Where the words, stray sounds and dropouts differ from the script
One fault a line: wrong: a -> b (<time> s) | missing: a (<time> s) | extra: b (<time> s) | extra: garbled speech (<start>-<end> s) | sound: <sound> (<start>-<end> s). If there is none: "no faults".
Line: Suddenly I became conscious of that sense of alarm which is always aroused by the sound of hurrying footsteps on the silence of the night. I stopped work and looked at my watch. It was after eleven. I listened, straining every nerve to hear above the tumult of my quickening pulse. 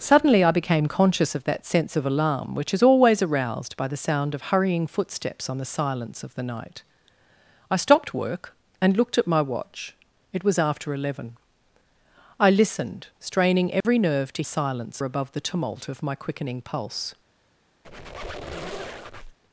sound: dropout (13.8-13.8 s)
wrong: hear -> silence (14.4 s)
sound: squeak (17.8-19.4 s)